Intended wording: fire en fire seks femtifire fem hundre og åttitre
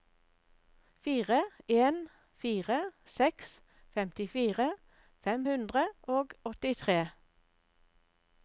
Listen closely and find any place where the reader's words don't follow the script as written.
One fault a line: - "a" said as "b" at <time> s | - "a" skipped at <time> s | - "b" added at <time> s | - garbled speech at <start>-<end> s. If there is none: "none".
none